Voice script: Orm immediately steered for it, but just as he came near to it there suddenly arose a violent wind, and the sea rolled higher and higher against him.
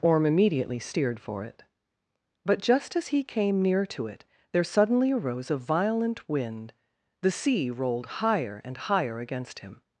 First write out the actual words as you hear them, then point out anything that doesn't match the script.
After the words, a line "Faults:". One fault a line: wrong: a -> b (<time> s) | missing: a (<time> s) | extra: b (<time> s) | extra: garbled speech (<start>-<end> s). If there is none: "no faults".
Orm immediately steered for it, but just as he came near to it there suddenly arose a violent wind, the sea rolled higher and higher against him.
Faults:
missing: and (6.7 s)